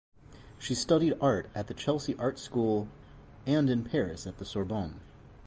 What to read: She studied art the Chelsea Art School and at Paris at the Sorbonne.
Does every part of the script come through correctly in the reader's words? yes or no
no